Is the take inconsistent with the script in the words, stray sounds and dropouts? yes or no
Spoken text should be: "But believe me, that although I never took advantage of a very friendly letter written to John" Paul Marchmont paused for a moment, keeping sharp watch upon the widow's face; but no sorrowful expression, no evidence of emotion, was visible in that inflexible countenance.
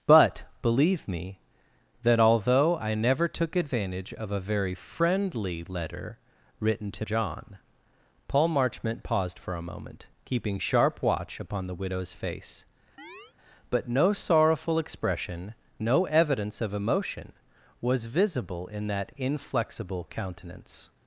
yes